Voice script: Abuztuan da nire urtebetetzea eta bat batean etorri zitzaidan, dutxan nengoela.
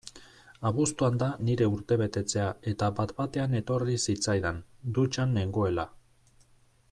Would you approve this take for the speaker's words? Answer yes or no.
yes